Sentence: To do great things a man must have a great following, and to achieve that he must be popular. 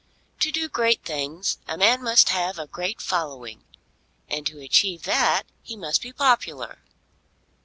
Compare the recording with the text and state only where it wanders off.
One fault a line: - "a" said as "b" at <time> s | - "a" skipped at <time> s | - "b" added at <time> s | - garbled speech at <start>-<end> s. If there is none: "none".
none